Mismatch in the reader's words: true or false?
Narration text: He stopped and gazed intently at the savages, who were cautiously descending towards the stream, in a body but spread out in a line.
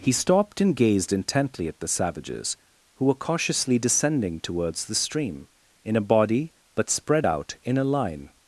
false